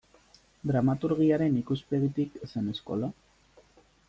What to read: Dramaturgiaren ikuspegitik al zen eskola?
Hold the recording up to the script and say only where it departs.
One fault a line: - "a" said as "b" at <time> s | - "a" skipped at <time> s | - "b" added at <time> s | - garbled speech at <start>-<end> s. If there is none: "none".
none